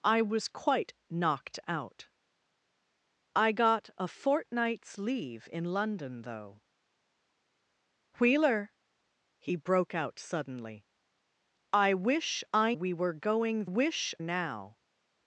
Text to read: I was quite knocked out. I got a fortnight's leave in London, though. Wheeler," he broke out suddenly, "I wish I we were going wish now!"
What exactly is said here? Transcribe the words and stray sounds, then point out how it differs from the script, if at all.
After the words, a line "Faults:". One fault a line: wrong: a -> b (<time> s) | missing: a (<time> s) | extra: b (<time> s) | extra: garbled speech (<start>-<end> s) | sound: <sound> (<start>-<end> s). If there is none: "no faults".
I was quite knocked out. I got a fortnight's leave in London, though. Wheeler," he broke out suddenly, "I wish I we were going wish now!"
Faults:
no faults